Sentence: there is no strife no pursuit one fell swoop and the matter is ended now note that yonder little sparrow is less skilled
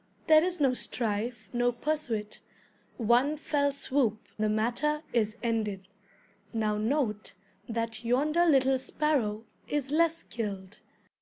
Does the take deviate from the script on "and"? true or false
true